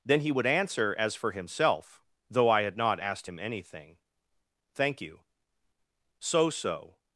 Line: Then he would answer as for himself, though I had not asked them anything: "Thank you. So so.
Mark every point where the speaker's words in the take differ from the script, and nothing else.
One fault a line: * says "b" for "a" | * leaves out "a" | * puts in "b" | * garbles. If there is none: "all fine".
* says "him" for "them"